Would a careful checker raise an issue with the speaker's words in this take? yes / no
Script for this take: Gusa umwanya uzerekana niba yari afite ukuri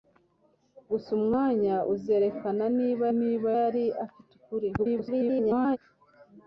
yes